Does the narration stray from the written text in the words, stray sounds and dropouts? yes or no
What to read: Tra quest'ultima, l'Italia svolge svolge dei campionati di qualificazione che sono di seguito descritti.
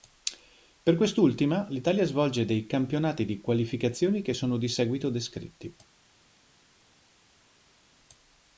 yes